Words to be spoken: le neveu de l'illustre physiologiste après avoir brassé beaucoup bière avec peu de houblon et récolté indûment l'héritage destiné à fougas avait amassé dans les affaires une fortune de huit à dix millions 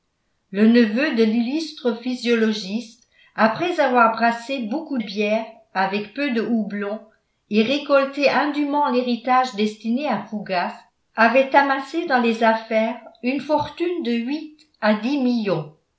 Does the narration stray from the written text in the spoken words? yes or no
no